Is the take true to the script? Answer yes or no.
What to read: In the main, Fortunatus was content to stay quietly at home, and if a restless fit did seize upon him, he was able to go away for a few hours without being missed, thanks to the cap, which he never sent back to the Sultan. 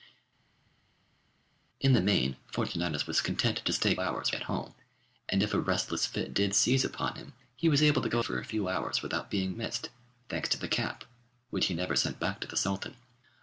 no